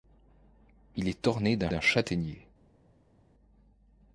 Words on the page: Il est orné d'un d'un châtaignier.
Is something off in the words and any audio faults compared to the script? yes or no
no